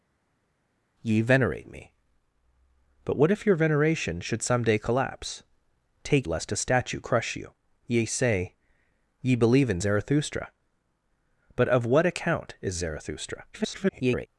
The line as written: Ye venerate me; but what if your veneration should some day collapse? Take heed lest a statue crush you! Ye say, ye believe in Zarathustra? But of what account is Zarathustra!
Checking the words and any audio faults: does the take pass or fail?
fail